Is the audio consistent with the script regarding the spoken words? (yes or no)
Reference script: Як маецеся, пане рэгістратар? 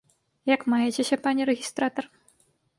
yes